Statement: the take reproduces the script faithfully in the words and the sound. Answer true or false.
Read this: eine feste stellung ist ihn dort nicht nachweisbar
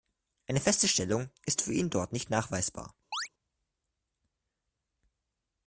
false